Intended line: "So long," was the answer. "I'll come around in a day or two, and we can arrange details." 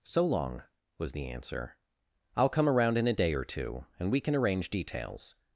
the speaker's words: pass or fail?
pass